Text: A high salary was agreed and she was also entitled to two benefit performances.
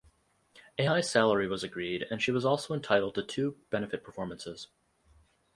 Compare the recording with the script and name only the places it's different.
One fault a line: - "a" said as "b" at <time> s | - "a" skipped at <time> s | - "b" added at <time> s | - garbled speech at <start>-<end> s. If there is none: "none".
none